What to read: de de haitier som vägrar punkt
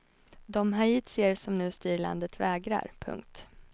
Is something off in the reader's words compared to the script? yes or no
yes